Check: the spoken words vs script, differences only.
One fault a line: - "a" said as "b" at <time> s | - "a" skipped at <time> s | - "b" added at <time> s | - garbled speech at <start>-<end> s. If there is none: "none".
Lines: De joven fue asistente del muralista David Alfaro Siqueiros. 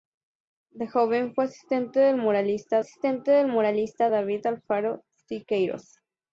- "asistente del muralista" added at 2.8 s